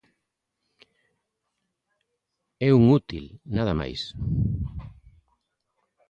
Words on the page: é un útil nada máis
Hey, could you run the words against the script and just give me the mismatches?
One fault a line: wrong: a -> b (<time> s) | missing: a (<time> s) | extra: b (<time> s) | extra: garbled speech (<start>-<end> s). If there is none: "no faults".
no faults